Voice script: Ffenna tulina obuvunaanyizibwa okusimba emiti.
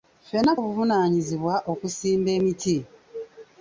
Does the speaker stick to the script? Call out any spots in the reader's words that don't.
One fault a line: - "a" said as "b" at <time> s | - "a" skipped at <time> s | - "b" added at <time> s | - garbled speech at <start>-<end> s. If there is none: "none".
- "tulina" skipped at 0.5 s